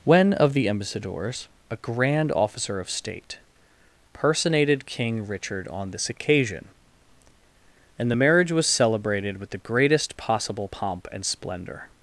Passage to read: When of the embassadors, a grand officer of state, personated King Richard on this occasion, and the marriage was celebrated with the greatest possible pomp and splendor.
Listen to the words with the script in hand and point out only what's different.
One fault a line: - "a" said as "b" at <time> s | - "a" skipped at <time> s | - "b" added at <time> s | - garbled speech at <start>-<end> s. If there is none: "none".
none